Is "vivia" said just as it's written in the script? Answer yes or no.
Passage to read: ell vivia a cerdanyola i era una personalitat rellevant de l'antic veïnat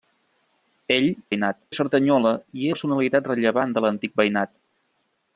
no